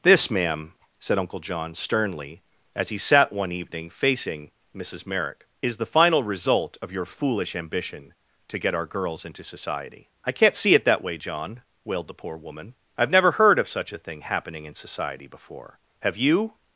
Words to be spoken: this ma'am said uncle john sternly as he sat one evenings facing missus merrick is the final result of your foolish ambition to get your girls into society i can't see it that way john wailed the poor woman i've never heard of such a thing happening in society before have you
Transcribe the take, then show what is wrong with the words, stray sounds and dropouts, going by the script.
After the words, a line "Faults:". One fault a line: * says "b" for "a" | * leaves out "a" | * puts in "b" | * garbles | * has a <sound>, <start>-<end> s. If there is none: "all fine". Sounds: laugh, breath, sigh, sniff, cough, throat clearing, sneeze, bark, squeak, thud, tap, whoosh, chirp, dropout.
this ma'am said uncle john sternly as he sat one evening facing missus merrick is the final result of your foolish ambition to get our girls into society i can't see it that way john wailed the poor woman i've never heard of such a thing happening in society before have you
Faults:
* says "evening" for "evenings"
* says "our" for "your"